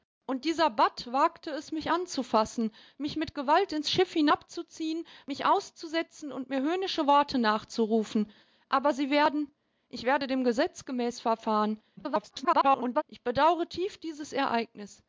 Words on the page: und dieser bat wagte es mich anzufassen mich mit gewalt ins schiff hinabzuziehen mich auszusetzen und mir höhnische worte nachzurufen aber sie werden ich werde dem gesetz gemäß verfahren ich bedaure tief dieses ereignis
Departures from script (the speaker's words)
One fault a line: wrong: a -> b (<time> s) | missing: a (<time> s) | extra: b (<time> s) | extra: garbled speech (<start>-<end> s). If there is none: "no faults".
extra: garbled speech (12.0-13.0 s)